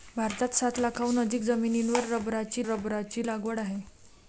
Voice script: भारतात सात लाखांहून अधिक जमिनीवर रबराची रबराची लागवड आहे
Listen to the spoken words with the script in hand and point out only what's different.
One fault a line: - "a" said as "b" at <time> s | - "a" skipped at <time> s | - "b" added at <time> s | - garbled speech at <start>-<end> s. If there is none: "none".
none